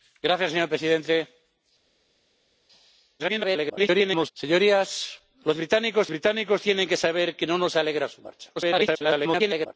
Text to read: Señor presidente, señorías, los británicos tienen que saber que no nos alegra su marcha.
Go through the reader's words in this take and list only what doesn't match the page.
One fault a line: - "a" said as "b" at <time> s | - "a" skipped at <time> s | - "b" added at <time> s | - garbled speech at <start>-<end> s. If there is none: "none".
- garbled speech at 3.2-4.3 s
- "británicos" added at 6.1 s
- garbled speech at 8.5-9.7 s